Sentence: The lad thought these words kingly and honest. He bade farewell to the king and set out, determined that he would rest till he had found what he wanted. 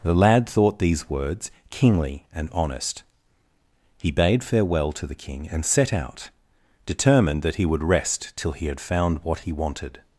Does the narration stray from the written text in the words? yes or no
no